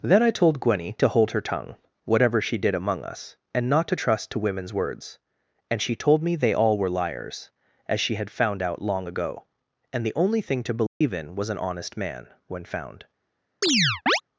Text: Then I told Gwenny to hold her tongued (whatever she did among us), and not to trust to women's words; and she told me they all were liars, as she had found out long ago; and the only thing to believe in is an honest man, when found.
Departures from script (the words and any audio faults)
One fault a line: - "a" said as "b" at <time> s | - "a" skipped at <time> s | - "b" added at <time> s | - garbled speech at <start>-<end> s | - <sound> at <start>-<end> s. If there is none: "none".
- "tongued" said as "tongue" at 1.4 s
- dropout at 10.9-11.0 s
- "is" said as "was" at 11.3 s
- chirp at 13.6-14.2 s